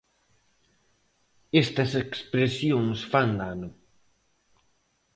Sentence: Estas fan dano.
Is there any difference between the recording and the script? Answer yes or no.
yes